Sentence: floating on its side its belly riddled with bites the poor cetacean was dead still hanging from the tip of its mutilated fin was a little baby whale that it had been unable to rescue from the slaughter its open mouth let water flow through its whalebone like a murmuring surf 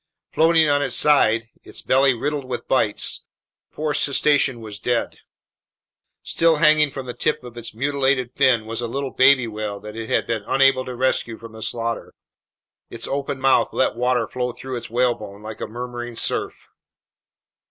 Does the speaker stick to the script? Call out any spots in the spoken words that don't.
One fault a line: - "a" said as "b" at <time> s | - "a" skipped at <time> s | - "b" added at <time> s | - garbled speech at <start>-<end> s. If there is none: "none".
none